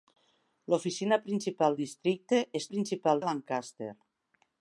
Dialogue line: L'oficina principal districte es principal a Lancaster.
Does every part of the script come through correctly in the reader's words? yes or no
yes